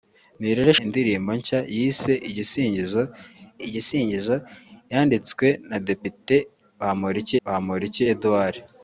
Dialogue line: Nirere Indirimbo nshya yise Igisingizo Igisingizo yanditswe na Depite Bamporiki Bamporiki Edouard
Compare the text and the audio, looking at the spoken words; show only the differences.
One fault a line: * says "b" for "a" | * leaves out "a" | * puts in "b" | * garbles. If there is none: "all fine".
all fine